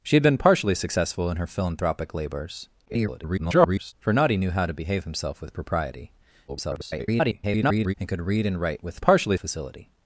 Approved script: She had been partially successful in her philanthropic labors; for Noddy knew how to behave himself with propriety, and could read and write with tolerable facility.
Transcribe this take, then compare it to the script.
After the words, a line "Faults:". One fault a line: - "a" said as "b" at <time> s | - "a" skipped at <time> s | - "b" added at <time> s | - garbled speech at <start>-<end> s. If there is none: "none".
She had been partially successful in her philanthropic labors; [garbled] for Noddy knew how to behave himself with propriety, [garbled] and could read and write with partially facility.
Faults:
- garbled speech at 2.9-3.9 s
- garbled speech at 6.5-7.9 s
- "tolerable" said as "partially" at 9.0 s